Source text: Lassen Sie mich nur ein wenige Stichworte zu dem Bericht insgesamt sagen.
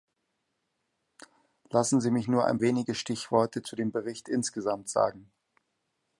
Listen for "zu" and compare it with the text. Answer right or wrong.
right